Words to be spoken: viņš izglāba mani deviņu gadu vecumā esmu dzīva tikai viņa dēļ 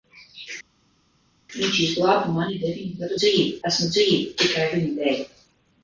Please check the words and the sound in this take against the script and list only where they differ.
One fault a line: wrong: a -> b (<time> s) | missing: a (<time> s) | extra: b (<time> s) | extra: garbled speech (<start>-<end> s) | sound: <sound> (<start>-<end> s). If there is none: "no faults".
wrong: vecumā -> dzīva (3.2 s)